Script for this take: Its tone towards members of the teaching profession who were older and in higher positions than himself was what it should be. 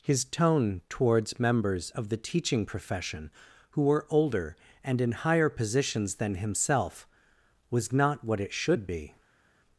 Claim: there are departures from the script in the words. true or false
true